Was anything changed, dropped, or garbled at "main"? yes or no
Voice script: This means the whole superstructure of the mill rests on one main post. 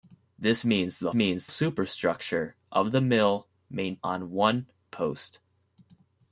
yes